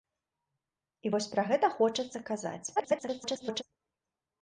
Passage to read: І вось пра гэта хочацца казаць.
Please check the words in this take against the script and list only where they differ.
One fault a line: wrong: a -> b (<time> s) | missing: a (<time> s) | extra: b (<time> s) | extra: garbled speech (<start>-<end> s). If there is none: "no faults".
extra: garbled speech (2.8-3.6 s)